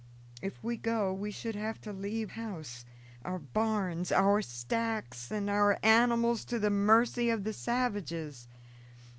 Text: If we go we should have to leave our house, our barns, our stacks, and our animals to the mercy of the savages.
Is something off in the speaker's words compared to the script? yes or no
yes